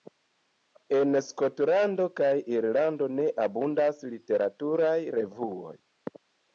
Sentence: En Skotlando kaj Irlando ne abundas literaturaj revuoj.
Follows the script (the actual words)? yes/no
yes